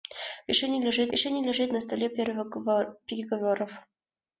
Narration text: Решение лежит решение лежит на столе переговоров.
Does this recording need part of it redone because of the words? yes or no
no